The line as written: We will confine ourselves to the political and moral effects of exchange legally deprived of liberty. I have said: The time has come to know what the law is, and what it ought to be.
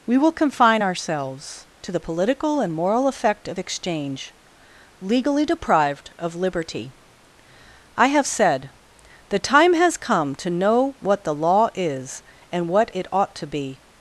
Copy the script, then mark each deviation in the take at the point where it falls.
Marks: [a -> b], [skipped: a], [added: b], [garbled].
We will confine ourselves to the political and moral [effects -> effect] of exchange legally deprived of liberty. I have said: The time has come to know what the law is, and what it ought to be.